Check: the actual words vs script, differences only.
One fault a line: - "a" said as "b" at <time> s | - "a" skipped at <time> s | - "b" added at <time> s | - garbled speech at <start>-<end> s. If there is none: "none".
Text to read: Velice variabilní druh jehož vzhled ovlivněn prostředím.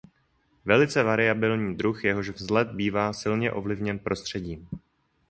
- "bývá silně" added at 2.7 s